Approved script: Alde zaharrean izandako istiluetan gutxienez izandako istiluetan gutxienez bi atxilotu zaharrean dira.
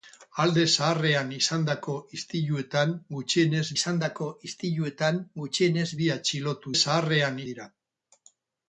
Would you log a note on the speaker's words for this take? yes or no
no